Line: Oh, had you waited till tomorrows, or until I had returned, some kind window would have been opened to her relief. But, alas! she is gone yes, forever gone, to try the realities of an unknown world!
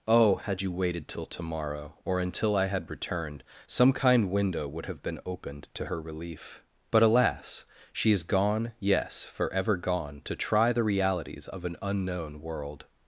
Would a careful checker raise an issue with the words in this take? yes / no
yes